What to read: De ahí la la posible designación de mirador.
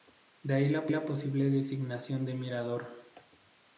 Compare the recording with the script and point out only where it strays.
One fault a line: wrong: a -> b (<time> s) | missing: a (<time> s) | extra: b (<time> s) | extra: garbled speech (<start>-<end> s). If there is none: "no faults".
no faults